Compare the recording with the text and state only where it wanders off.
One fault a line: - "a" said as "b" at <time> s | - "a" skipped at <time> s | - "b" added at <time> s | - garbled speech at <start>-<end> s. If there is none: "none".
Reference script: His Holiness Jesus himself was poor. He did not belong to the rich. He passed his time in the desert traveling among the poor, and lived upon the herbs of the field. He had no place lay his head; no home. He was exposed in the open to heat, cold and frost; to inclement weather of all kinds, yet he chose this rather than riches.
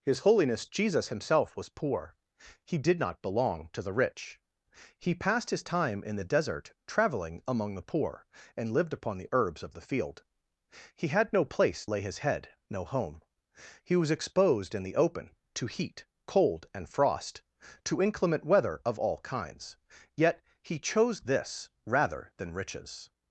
none